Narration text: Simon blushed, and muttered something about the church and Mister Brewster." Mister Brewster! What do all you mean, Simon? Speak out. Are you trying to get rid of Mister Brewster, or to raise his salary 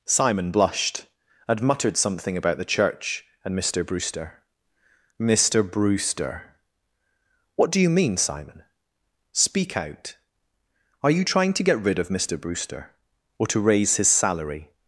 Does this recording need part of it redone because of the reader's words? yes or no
yes